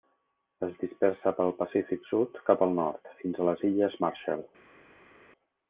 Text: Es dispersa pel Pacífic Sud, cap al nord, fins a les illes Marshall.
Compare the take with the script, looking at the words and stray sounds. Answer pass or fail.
pass